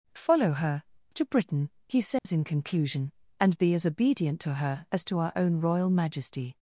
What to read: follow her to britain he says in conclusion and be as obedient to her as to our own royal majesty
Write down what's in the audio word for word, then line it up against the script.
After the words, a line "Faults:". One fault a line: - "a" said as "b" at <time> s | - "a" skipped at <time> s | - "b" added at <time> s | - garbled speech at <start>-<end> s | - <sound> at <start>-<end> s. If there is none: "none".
follow her to britain he says in conclusion and be as obedient to her as to our own royal majesty
Faults:
- dropout at 2.2-2.3 s